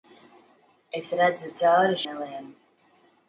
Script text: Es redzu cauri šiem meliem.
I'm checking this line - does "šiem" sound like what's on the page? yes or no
no